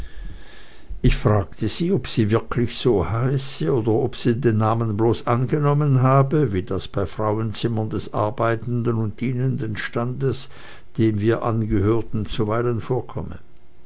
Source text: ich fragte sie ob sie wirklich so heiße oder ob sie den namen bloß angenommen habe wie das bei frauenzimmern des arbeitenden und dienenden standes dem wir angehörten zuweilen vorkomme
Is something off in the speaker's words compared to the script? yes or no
no